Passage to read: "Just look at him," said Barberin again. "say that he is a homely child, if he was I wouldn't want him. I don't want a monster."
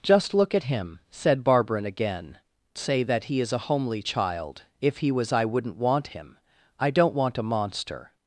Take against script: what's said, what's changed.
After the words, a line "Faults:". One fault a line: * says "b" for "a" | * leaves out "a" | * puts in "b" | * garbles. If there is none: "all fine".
"Just look at him," said Barberin again. "say that he is a homely child, if he was I wouldn't want him. I don't want a monster."
Faults:
all fine